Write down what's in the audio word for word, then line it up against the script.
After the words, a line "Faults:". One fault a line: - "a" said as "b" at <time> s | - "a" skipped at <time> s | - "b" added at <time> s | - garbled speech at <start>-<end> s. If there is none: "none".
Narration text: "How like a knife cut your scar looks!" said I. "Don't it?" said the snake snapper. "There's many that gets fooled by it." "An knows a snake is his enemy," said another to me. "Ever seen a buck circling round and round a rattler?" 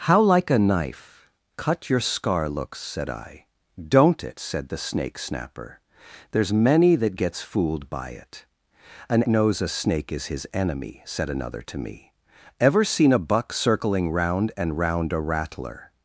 "How like a knife cut your scar looks!" said I. "Don't it?" said the snake snapper. "There's many that gets fooled by it." "An knows a snake is his enemy," said another to me. "Ever seen a buck circling round and round a rattler?"
Faults:
none